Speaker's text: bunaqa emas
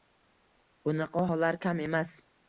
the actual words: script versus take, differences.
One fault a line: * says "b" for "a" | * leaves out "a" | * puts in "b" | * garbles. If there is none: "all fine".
* puts in "hollar kam"